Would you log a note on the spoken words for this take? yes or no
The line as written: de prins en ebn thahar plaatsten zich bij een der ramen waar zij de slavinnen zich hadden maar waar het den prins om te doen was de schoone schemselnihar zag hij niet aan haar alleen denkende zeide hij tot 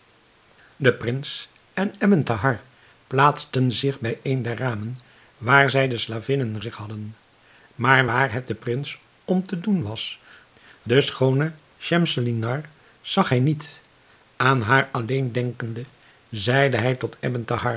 no